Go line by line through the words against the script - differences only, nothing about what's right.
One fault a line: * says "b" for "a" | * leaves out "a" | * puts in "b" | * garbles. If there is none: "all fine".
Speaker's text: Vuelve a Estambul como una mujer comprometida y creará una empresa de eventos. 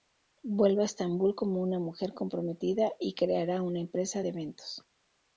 all fine